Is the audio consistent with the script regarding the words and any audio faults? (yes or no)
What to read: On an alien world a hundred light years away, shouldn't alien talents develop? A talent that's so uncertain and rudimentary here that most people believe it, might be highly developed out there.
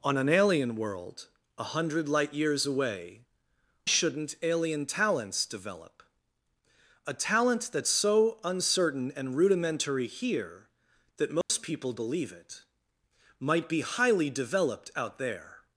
no